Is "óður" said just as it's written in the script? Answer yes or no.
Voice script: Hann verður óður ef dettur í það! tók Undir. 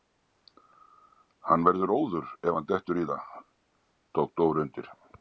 yes